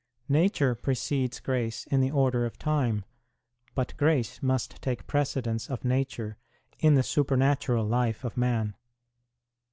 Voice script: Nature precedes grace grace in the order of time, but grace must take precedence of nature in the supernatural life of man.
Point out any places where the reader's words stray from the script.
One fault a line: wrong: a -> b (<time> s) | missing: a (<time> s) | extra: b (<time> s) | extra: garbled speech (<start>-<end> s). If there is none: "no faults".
missing: grace (1.9 s)